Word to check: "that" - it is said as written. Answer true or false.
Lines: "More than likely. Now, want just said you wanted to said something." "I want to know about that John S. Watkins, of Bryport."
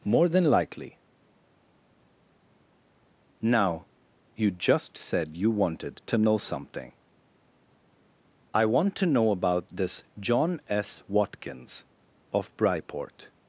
false